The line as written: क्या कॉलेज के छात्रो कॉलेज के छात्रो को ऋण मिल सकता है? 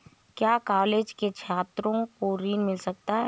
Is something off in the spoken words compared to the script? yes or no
yes